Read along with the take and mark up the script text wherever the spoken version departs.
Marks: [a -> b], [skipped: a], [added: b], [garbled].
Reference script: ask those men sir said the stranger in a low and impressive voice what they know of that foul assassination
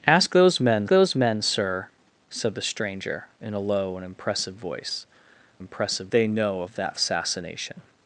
ask those men [added: those men] sir said the stranger in a low and impressive voice [what -> impressive] they know of that [skipped: foul] assassination